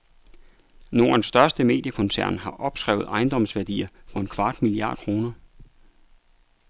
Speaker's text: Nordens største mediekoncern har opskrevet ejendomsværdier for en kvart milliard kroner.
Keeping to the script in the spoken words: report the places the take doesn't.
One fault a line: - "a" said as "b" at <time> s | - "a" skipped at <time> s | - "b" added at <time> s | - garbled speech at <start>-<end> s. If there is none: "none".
none